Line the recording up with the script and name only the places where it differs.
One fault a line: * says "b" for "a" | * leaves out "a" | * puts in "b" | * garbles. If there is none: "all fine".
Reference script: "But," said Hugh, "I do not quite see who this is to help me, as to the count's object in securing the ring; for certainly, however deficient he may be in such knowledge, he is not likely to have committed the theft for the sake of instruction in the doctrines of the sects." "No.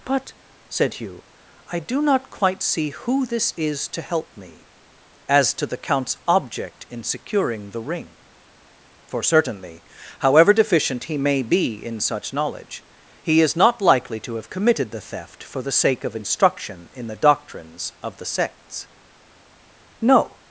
all fine